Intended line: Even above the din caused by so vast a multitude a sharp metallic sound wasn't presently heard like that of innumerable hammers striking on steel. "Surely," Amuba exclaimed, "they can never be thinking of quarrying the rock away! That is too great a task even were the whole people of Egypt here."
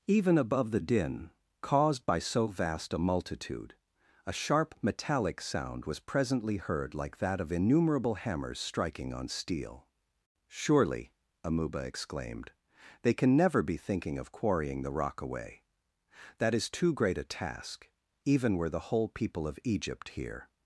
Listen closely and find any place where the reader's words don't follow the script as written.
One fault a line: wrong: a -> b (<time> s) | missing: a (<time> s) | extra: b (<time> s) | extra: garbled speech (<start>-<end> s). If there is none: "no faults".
wrong: wasn't -> was (5.8 s)